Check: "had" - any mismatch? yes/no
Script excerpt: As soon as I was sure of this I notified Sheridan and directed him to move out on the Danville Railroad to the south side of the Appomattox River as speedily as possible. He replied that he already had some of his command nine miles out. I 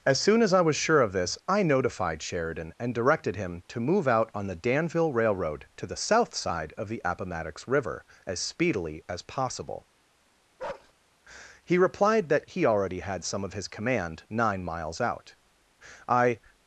no